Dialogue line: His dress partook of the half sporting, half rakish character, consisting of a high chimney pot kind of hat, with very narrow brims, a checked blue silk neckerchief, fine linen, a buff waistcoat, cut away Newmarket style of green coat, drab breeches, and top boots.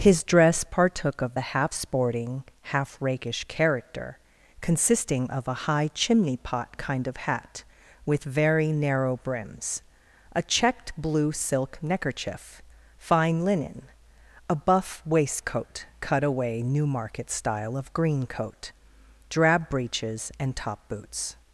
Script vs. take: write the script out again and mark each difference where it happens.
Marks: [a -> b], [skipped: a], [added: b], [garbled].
His dress partook of the half sporting, half rakish character, consisting of a high chimney pot kind of hat, with very narrow brims, a checked blue silk neckerchief, fine linen, a buff waistcoat, cut away Newmarket style of green coat, drab breeches, and top boots.